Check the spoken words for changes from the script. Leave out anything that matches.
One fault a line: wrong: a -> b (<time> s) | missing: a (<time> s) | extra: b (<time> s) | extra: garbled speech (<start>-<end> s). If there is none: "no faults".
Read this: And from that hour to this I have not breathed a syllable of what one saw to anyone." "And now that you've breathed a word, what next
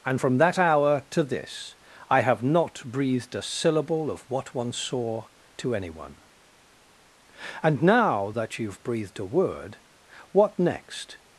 no faults